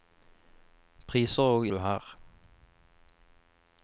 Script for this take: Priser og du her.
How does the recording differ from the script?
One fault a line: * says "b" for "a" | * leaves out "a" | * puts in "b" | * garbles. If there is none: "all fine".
all fine